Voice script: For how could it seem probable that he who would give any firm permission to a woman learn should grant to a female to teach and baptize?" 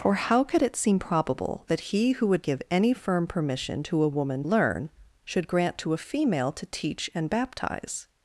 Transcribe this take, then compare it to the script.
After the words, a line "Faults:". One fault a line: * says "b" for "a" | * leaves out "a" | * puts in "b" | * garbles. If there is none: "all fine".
For how could it seem probable that he who would give any firm permission to a woman learn should grant to a female to teach and baptize?"
Faults:
all fine